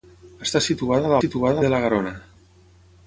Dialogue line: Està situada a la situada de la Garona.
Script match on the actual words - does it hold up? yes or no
yes